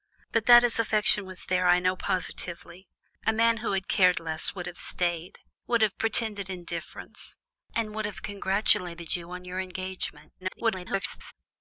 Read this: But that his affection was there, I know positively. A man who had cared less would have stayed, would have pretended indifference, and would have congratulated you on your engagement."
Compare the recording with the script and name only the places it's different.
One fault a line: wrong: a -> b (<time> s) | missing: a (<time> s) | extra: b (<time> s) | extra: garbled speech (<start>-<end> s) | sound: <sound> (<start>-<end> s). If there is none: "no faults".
extra: garbled speech (10.4-11.3 s)